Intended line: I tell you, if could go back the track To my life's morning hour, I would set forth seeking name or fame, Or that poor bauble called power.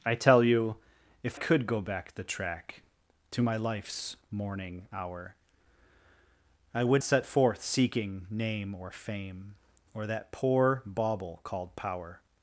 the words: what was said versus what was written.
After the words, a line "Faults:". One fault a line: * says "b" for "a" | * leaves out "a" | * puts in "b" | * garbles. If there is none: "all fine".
I tell you, if could go back the track To my life's morning hour, I would set forth seeking name or fame, Or that poor bauble called power.
Faults:
all fine